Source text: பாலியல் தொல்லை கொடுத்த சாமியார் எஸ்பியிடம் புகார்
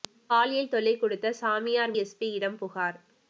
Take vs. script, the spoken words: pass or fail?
pass